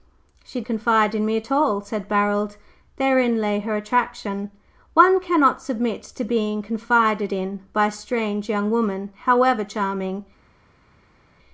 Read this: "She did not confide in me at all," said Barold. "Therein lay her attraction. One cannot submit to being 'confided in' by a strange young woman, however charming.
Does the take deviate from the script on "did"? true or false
true